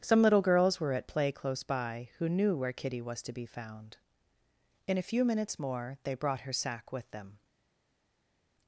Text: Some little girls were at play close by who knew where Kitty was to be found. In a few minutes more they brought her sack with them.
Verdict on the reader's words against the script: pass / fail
pass